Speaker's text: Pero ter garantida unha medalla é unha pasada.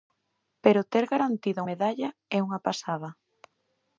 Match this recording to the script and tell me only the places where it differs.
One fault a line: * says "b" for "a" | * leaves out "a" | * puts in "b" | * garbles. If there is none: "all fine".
* leaves out "unha"